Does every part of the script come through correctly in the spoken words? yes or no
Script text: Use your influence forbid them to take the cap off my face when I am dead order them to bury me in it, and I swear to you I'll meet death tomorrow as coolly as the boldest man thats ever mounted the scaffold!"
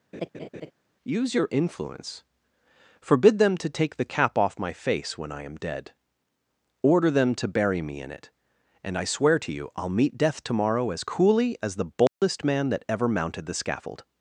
no